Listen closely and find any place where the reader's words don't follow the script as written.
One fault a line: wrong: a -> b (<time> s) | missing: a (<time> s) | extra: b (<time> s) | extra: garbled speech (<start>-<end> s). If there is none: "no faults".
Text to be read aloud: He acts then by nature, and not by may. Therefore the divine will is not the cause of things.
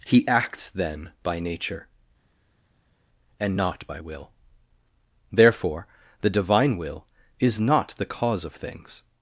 wrong: may -> will (4.0 s)